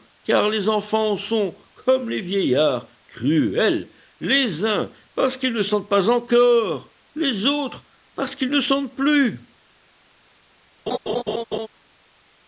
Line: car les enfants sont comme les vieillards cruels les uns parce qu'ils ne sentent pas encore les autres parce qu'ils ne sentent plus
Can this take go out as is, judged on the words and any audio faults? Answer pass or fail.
fail